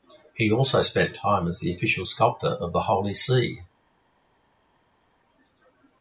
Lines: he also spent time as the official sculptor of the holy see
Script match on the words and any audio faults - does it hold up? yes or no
yes